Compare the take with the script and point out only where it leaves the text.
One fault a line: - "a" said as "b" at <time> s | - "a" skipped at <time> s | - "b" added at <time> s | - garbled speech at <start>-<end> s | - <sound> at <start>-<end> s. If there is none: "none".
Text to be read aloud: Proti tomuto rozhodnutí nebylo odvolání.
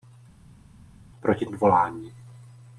- "tomuto rozhodnutí nebylo" skipped at 1.5 s